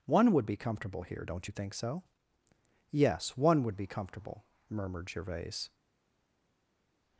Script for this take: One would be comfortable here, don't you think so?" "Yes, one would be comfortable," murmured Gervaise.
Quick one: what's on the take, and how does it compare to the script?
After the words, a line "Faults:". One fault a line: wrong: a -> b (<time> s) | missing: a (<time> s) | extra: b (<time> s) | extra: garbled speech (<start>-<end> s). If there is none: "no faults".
One would be comfortable here, don't you think so?" "Yes, one would be comfortable," murmured Gervaise.
Faults:
no faults